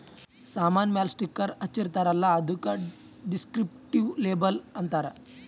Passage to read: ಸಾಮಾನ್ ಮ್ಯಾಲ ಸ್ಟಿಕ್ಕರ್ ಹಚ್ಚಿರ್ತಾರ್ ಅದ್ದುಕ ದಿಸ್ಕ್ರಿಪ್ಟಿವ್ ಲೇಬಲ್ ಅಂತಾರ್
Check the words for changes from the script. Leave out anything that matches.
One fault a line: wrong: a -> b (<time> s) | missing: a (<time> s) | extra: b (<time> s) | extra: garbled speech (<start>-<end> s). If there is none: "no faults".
extra: ಅಲ್ಲ (2.1 s)